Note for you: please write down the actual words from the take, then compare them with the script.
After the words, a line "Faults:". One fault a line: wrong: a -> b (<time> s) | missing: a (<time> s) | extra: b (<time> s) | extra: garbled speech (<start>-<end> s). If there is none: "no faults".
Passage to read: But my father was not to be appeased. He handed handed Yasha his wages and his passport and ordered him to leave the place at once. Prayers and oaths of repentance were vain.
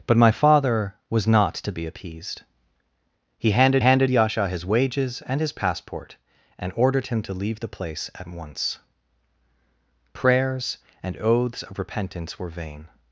But my father was not to be appeased. He handed handed Yasha his wages and his passport and ordered him to leave the place at once. Prayers and oaths of repentance were vain.
Faults:
no faults